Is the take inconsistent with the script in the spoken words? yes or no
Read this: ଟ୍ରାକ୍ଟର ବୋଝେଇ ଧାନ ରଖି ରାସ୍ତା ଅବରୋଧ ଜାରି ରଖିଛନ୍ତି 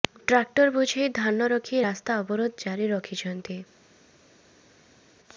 no